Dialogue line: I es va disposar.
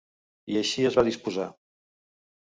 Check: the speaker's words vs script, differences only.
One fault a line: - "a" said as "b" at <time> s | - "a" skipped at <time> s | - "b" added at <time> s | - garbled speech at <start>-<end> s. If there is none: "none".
- "així" added at 0.6 s